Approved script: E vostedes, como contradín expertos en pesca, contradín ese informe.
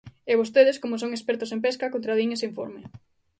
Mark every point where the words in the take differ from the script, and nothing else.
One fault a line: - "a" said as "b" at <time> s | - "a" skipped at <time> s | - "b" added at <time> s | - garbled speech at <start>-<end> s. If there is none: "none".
- "contradín" said as "son" at 1.0 s